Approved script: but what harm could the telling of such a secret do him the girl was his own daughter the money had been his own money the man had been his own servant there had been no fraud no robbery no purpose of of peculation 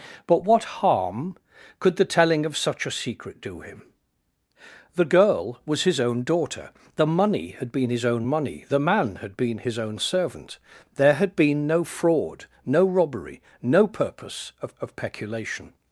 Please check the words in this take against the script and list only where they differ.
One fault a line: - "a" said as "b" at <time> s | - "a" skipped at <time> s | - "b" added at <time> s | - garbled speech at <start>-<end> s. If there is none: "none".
none